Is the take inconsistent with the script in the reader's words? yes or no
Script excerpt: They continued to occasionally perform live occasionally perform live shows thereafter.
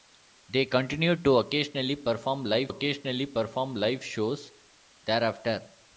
no